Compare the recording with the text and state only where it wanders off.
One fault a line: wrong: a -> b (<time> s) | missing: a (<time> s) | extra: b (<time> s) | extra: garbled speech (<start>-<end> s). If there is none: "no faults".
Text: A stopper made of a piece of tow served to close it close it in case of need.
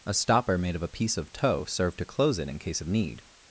missing: close it (2.5 s)